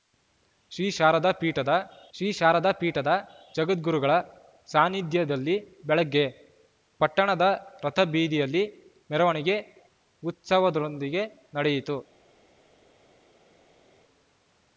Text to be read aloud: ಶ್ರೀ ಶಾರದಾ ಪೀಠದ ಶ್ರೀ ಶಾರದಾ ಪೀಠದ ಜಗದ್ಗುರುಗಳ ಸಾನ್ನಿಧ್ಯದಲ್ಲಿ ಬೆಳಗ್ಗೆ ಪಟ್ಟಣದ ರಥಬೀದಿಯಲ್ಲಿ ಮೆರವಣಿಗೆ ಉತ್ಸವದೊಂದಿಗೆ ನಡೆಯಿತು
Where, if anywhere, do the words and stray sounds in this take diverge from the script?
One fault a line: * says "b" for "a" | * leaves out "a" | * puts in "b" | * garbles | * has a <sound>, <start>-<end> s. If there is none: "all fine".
all fine